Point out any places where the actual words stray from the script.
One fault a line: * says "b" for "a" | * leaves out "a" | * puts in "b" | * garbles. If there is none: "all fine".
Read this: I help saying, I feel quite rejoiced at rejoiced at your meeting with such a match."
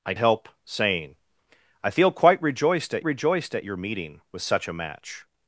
all fine